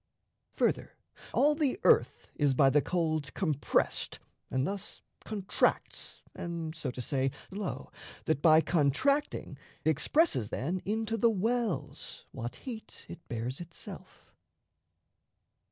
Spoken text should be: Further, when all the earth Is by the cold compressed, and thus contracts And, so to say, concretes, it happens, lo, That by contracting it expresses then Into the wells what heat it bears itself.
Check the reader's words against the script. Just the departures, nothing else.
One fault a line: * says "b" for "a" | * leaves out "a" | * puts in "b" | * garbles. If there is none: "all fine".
* leaves out "when"
* leaves out "concretes it happens"
* leaves out "it"